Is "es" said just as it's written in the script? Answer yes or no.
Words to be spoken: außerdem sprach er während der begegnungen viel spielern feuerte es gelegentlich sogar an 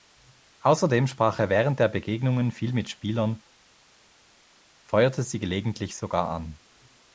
no